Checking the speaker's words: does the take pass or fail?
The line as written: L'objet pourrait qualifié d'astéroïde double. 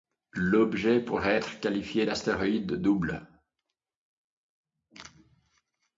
fail